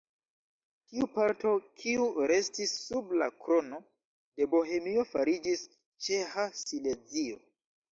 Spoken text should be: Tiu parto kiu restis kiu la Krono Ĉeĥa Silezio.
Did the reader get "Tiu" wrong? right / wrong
right